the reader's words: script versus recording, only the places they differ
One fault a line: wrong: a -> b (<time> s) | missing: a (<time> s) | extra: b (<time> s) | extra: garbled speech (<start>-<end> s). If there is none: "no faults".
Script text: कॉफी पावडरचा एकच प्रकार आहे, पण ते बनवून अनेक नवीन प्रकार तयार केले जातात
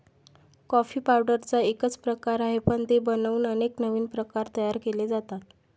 no faults